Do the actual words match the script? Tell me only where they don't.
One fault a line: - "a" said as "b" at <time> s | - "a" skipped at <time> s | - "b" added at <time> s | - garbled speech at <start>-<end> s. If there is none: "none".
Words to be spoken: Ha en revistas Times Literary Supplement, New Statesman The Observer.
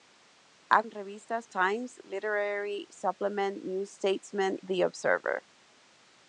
none